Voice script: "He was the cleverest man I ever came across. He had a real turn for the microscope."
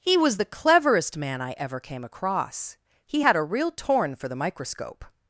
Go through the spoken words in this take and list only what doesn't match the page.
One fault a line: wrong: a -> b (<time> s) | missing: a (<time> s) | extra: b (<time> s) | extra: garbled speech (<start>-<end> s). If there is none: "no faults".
wrong: turn -> torn (3.7 s)